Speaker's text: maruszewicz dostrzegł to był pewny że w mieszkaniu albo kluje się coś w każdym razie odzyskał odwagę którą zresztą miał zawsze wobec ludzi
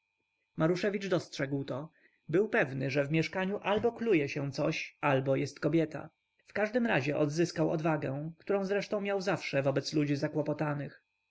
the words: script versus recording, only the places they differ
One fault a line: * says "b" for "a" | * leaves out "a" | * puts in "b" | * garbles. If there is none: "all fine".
* puts in "albo jest kobieta"